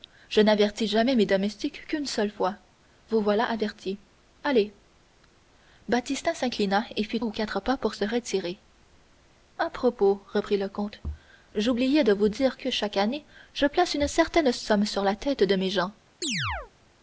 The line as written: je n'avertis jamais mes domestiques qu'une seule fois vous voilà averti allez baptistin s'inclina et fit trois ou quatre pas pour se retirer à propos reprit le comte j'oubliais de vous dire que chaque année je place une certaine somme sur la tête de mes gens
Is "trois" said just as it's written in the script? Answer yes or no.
no